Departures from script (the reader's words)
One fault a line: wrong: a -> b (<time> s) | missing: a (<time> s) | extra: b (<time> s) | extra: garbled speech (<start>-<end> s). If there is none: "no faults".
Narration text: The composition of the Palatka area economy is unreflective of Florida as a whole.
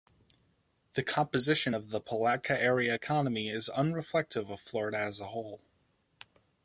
no faults